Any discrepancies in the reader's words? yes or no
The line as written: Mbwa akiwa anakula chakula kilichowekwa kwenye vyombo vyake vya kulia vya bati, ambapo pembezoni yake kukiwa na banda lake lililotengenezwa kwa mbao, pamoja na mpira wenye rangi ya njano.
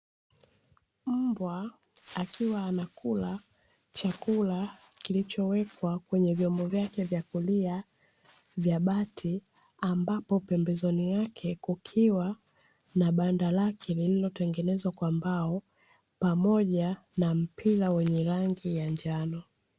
no